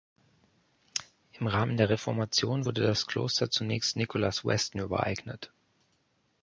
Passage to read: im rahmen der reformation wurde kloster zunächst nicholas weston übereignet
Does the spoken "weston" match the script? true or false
true